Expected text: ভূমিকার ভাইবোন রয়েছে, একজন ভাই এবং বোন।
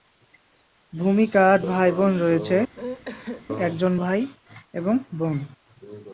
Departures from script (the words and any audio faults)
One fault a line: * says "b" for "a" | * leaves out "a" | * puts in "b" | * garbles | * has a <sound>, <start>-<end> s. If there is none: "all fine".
* has a sneeze, 2.7-3.5 s